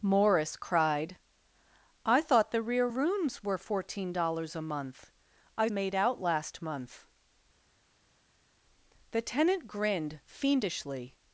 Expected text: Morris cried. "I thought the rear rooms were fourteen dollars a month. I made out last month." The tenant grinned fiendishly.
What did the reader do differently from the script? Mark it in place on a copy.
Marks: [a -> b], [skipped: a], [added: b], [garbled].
Morris cried. "I thought the rear rooms were fourteen dollars a month. I made out last month." The tenant grinned fiendishly.